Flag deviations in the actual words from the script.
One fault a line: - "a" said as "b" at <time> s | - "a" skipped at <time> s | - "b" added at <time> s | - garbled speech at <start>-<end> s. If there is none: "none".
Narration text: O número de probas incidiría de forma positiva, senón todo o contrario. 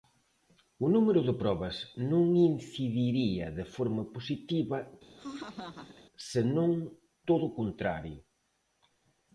- "non" added at 2.1 s